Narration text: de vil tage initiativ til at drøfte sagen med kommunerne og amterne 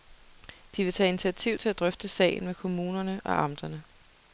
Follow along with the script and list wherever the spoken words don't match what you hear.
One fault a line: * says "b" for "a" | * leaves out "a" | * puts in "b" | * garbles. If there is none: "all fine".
all fine